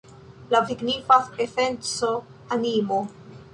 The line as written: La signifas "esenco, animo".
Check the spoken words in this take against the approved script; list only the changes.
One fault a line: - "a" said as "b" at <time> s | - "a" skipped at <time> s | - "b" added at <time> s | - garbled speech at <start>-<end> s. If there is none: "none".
none